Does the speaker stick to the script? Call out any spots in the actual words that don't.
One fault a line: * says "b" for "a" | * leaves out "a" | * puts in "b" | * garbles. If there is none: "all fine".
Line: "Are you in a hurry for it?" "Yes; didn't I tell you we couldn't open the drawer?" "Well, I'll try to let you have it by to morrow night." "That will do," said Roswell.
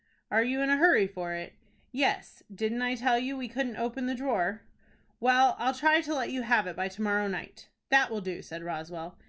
all fine